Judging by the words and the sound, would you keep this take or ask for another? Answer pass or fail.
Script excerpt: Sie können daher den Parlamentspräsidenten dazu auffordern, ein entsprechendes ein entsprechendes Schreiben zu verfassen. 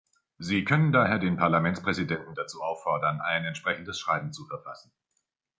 fail